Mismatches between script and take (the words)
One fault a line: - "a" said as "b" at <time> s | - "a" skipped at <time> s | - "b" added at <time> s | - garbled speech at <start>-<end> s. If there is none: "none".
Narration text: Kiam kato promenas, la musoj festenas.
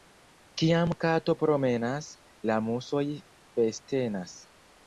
none